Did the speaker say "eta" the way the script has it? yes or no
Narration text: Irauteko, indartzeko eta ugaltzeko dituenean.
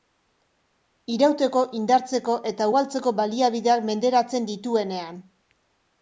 yes